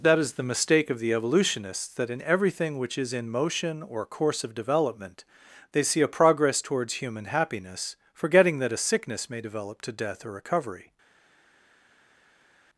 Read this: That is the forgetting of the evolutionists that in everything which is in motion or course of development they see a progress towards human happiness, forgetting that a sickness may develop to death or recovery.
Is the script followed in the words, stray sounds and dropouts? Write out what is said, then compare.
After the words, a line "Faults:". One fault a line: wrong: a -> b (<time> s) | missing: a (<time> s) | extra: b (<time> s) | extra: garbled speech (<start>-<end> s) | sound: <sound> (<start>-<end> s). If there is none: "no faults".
That is the mistake of the evolutionists that in everything which is in motion or course of development they see a progress towards human happiness, forgetting that a sickness may develop to death or recovery.
Faults:
wrong: forgetting -> mistake (0.4 s)